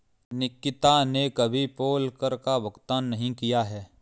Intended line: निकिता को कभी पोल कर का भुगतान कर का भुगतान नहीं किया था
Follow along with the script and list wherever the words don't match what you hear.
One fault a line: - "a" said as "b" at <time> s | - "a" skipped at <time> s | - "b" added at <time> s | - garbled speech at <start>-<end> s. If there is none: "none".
- "को" said as "ने" at 1.0 s
- "कर का भुगतान" skipped at 3.0 s
- "था" said as "है" at 3.6 s